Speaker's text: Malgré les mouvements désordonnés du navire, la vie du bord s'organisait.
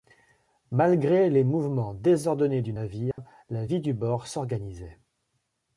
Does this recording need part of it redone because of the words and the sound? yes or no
yes